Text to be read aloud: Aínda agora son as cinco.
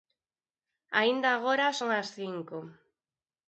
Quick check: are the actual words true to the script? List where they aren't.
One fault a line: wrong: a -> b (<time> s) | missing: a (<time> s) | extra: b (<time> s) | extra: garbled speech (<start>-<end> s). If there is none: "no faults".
no faults